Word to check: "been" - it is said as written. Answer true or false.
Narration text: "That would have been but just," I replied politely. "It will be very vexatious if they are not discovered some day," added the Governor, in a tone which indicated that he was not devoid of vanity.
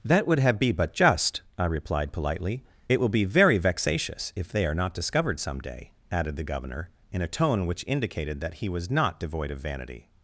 false